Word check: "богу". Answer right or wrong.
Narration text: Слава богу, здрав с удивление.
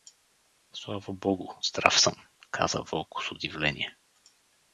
right